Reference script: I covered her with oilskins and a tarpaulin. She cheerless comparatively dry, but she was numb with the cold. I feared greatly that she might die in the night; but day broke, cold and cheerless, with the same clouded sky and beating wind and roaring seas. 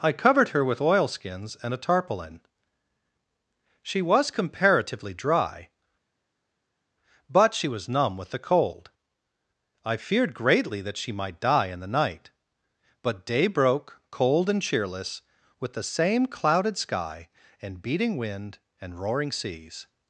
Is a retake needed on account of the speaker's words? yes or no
yes